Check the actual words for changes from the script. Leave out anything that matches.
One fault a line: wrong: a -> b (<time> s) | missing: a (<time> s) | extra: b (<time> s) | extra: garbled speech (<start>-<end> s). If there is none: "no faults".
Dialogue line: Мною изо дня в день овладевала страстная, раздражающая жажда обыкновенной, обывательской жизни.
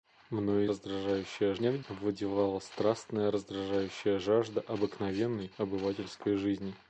wrong: изо -> раздражающая (0.7 s)
missing: день (1.8 s)